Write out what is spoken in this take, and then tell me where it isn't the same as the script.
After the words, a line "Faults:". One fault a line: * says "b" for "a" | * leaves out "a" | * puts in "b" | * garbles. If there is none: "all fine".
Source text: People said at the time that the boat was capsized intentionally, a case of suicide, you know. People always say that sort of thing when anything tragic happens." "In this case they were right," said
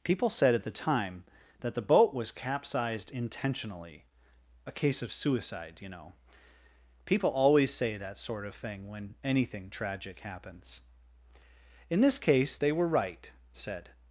People said at the time that the boat was capsized intentionally, a case of suicide, you know. People always say that sort of thing when anything tragic happens." "In this case they were right," said
Faults:
all fine